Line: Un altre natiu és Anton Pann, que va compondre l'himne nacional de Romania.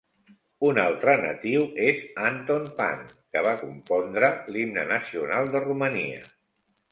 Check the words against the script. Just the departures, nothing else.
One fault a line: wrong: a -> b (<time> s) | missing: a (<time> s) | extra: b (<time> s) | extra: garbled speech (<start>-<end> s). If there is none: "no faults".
no faults